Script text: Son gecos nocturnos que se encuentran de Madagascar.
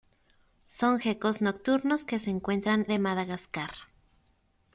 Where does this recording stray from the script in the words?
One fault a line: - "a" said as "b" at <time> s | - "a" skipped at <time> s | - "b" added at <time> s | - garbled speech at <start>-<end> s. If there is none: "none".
none